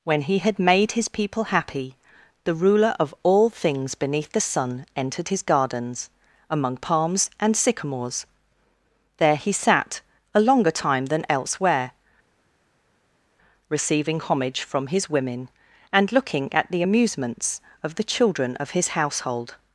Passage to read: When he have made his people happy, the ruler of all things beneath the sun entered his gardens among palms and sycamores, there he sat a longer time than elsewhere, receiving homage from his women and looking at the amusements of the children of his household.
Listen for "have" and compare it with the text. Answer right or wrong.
wrong